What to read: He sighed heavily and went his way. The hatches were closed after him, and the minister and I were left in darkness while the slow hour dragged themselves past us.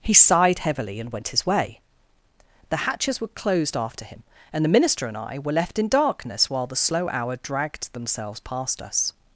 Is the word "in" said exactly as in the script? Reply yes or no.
yes